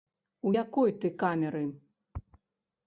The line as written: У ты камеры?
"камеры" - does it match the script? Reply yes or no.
yes